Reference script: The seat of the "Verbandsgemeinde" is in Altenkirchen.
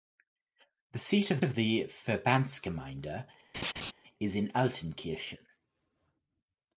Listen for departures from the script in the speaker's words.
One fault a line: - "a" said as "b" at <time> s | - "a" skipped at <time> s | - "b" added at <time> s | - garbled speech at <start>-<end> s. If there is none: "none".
- "of" added at 1.4 s